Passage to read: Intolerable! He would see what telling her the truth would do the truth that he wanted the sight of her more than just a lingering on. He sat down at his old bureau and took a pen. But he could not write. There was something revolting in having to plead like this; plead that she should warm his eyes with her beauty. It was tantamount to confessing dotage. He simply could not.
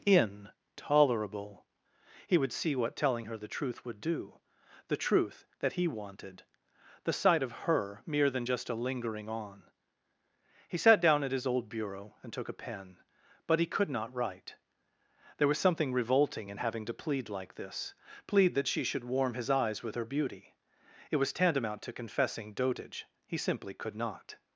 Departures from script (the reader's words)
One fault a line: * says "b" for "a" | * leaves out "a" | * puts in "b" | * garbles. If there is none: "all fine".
* says "mere" for "more"